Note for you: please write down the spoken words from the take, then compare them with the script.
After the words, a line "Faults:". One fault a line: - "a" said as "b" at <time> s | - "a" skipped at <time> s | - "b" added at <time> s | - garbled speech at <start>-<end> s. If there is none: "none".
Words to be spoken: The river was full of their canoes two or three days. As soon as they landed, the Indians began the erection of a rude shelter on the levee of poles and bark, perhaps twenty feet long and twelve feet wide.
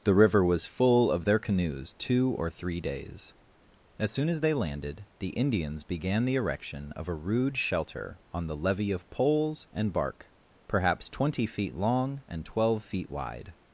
The river was full of their canoes two or three days. As soon as they landed, the Indians began the erection of a rude shelter on the levee of poles and bark, perhaps twenty feet long and twelve feet wide.
Faults:
none